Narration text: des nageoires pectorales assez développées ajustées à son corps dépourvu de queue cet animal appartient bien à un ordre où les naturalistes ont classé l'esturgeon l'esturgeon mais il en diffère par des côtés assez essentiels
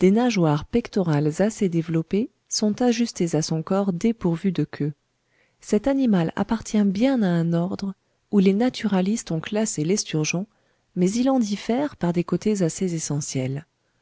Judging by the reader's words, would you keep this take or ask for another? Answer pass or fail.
fail